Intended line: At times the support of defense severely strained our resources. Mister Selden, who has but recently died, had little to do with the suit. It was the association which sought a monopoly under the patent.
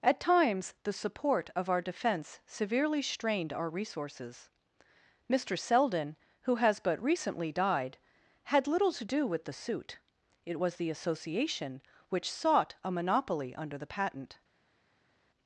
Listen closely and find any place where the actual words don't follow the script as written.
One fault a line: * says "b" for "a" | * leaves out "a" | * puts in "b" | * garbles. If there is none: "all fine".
* puts in "our"